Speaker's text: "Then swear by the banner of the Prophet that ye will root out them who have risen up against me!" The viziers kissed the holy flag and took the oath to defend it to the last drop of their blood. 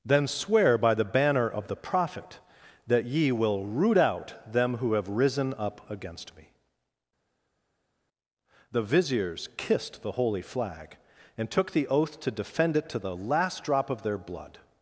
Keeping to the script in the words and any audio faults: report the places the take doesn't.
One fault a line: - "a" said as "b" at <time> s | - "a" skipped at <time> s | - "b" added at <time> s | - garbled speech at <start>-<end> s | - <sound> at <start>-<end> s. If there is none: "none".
none